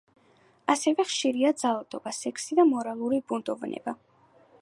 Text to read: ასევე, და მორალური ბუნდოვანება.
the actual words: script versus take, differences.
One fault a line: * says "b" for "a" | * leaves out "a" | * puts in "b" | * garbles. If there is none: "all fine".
* puts in "ხშირია ძალადობა სექსი"